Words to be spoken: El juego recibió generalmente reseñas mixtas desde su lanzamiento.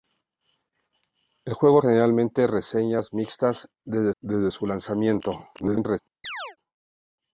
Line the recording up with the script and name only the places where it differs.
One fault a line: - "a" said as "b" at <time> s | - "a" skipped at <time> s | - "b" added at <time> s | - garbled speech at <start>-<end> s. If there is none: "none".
- "recibió" skipped at 1.8 s
- "desde" added at 4.2 s
- garbled speech at 5.5-6.0 s